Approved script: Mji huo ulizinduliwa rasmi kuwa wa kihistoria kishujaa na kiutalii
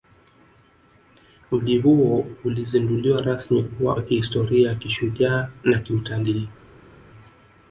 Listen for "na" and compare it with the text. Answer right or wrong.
right